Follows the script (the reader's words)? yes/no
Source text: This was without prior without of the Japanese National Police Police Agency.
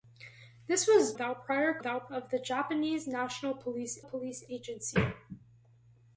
yes